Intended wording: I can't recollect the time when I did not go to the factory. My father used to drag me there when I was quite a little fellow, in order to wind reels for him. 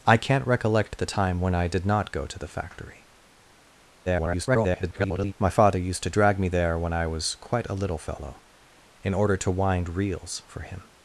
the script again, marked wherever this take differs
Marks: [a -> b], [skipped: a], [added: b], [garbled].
I can't recollect the time when I did not go to the factory. [garbled] My father used to drag me there when I was quite a little fellow, in order to wind reels for him.